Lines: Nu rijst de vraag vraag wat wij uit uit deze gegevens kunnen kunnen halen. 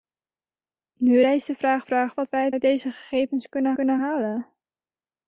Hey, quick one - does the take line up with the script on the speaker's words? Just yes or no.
yes